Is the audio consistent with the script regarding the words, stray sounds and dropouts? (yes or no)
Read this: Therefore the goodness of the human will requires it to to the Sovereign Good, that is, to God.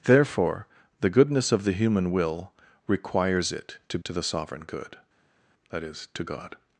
yes